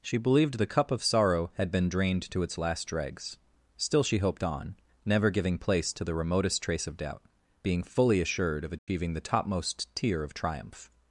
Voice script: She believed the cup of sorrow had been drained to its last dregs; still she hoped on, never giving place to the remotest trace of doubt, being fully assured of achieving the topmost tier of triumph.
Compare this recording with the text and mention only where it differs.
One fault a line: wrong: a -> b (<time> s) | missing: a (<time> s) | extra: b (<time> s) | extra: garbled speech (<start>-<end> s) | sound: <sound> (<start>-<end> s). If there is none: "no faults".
sound: dropout (8.8-8.9 s)